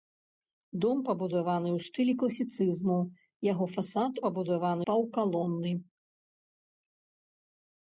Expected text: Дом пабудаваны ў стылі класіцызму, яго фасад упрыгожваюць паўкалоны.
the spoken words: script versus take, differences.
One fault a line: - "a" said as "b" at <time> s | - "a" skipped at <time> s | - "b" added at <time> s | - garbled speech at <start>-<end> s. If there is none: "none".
- "упрыгожваюць" said as "пабудаваны" at 4.2 s